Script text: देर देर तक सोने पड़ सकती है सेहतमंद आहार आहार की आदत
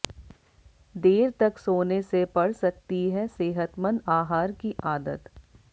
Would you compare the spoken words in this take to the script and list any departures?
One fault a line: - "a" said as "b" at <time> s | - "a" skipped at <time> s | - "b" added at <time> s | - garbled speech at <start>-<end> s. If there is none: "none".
- "देर" skipped at 1.3 s
- "से" added at 2.0 s
- "आहार" skipped at 4.5 s